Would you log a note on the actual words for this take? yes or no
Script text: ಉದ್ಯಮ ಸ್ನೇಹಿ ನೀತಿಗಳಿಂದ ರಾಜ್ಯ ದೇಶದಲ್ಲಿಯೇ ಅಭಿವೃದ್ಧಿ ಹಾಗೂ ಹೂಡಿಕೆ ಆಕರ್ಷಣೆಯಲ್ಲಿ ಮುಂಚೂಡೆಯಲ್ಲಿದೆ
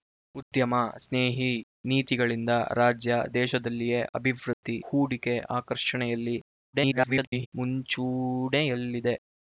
yes